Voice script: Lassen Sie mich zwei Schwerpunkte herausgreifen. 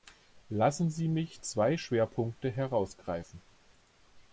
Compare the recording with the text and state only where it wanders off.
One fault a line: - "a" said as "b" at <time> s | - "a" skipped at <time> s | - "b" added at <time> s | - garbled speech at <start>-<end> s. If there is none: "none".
none